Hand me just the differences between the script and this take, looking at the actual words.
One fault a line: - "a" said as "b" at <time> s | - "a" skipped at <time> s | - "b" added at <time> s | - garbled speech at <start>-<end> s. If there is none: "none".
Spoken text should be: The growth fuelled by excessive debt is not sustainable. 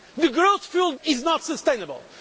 - "by excessive debt" skipped at 1.0 s